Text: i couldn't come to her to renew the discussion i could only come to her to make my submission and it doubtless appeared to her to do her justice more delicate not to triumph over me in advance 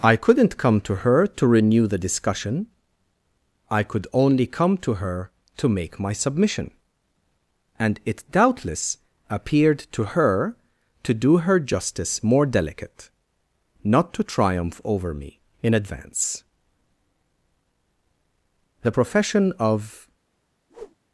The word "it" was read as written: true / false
true